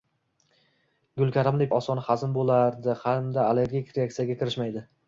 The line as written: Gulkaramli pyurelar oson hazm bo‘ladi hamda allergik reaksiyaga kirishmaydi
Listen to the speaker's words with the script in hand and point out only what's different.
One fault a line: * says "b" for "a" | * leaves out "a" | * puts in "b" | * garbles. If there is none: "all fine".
* leaves out "pyurelar"